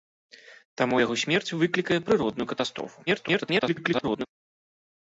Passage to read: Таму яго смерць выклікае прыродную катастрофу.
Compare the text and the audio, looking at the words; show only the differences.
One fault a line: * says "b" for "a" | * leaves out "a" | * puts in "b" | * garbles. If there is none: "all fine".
* garbles